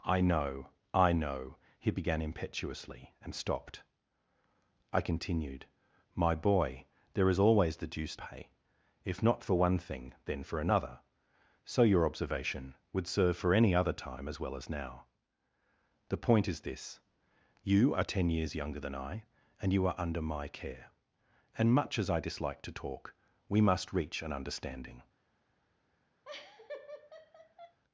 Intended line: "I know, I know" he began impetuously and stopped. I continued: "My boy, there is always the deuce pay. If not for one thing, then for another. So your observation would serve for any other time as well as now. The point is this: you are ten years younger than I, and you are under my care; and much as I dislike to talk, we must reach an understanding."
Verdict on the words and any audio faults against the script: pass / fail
fail